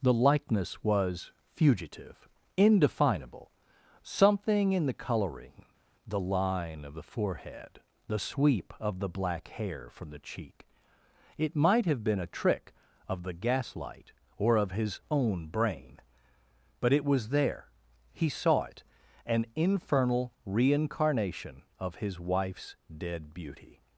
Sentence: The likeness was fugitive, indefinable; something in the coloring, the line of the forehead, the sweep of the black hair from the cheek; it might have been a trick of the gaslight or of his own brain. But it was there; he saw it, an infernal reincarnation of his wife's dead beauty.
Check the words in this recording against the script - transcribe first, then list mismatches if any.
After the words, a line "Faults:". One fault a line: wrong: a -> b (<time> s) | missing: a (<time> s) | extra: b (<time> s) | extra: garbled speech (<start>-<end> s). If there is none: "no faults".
The likeness was fugitive, indefinable; something in the coloring, the line of the forehead, the sweep of the black hair from the cheek; it might have been a trick of the gaslight or of his own brain. But it was there; he saw it, an infernal reincarnation of his wife's dead beauty.
Faults:
no faults